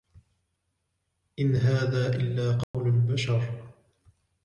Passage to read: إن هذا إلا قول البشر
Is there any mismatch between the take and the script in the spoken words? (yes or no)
no